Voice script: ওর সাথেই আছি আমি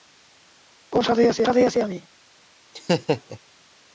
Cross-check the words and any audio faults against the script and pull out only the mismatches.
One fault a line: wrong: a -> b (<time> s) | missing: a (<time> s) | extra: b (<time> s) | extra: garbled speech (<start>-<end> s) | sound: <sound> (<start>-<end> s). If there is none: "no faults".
extra: সাথেই আছি (1.4 s)
sound: laugh (2.7-3.4 s)